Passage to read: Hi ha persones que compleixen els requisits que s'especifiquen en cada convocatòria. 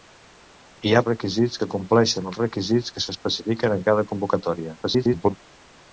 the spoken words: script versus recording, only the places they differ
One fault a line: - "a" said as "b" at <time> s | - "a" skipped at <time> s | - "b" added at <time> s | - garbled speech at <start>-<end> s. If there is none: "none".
- "persones" said as "requisits" at 1.1 s
- garbled speech at 4.8-5.4 s